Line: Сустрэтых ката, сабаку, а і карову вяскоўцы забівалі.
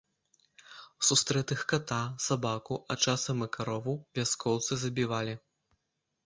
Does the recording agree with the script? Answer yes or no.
no